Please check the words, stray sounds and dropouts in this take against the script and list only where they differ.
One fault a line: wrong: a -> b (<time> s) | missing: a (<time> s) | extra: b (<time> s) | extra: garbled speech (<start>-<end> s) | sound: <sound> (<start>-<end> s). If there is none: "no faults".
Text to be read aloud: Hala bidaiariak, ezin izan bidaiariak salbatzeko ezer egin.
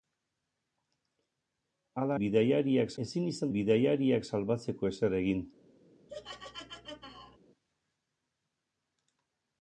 sound: laugh (6.1-7.4 s)